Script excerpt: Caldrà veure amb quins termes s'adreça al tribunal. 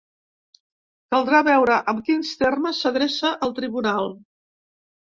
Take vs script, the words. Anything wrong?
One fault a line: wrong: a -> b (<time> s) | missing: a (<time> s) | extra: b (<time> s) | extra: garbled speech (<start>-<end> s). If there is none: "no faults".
no faults